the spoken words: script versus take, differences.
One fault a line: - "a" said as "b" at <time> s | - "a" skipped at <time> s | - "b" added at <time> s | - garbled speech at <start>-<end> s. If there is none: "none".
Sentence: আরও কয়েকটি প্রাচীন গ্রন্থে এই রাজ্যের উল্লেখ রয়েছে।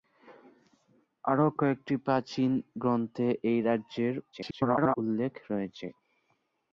- garbled speech at 4.3-5.0 s